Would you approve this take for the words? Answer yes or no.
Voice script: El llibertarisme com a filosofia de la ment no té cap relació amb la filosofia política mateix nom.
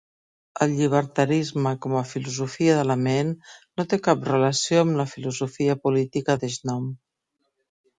yes